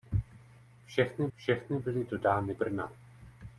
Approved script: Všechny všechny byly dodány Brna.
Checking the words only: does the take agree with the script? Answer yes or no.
yes